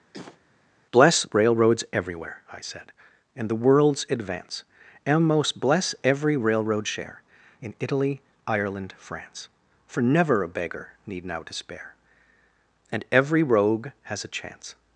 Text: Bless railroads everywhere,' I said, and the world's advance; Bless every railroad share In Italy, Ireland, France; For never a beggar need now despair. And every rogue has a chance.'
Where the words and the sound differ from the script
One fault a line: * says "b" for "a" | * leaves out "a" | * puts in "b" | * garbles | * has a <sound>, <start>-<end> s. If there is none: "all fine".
* has a cough, 0.1-0.4 s
* puts in "and most"